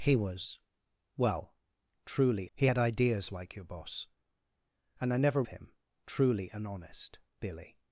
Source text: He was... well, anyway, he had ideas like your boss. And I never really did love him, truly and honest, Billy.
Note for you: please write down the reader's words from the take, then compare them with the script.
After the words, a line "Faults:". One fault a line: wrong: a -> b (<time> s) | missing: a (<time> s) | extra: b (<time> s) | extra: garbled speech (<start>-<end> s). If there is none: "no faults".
He was... well, truly, he had ideas like your boss. And I never him, truly and honest, Billy.
Faults:
wrong: anyway -> truly (2.0 s)
missing: really did love (5.4 s)